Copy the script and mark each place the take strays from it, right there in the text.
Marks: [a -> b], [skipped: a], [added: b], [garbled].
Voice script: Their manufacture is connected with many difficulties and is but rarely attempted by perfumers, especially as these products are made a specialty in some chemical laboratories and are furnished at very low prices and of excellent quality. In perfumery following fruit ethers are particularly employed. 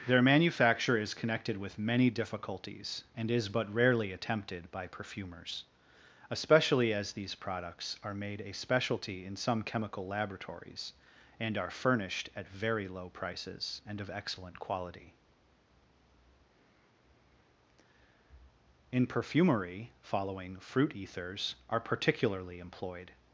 Their manufacture is connected with many difficulties and is but rarely attempted by perfumers, especially as these products are made a specialty in some chemical laboratories and are furnished at very low prices and of excellent quality. In perfumery following fruit ethers are particularly employed.